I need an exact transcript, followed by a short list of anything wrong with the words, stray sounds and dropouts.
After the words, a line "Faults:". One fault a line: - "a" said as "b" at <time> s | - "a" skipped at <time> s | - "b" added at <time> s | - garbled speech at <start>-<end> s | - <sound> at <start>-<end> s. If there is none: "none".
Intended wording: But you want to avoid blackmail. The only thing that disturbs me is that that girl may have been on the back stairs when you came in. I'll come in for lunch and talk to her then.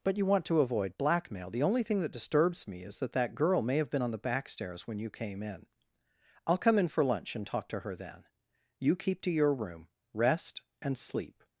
But you want to avoid blackmail. The only thing that disturbs me is that that girl may have been on the back stairs when you came in. I'll come in for lunch and talk to her then. You keep to your room. Rest, and sleep
Faults:
- "You keep to your room Rest and sleep" added at 8.8 s